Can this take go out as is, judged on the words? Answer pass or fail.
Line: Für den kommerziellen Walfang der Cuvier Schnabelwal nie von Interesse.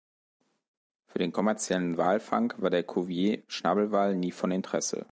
fail